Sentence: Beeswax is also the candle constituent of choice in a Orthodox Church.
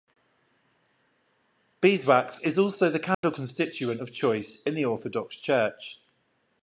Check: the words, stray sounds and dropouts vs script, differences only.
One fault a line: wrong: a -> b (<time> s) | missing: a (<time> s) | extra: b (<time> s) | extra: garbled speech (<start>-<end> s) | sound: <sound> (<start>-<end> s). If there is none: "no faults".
sound: dropout (3.1-3.2 s)
wrong: a -> the (4.7 s)